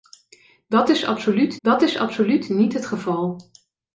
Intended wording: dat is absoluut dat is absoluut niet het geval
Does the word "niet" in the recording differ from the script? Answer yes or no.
no